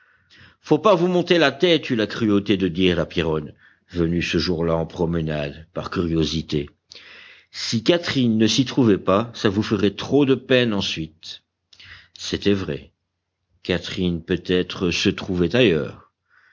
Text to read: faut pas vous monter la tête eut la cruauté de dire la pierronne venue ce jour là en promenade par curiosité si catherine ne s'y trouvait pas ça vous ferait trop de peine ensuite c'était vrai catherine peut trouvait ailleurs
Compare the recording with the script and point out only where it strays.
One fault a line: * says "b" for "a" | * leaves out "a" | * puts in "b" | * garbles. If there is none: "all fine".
* puts in "être se"